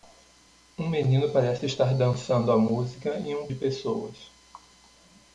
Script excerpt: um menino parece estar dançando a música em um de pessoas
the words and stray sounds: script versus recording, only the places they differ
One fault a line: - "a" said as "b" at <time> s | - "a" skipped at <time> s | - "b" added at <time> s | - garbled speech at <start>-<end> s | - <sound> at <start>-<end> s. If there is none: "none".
none